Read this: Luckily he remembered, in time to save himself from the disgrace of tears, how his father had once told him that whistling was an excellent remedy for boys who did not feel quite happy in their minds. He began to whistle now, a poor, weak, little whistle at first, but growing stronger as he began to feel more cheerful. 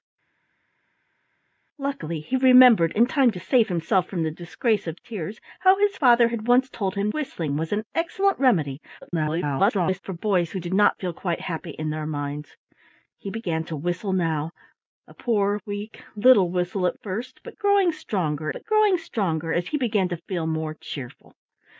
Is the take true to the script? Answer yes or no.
no